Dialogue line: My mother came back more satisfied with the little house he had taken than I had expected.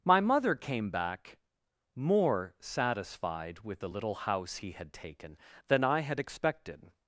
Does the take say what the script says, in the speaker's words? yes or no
yes